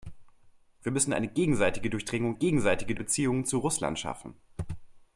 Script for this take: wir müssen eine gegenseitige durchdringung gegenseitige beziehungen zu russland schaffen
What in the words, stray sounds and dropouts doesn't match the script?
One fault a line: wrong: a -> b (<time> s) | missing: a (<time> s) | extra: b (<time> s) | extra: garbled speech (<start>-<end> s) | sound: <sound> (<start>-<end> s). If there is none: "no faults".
no faults